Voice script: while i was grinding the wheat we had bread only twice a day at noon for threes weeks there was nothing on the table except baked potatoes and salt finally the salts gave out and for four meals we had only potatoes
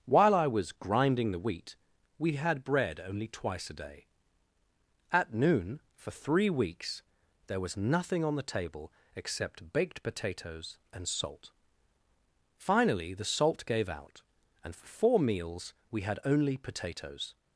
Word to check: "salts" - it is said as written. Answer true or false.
false